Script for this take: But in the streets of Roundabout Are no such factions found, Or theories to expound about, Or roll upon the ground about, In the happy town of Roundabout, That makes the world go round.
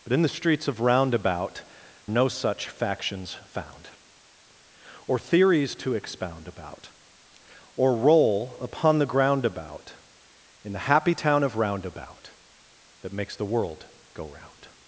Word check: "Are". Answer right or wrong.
wrong